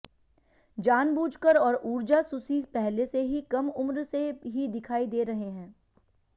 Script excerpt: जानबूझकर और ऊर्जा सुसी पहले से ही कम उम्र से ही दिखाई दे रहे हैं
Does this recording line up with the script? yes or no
yes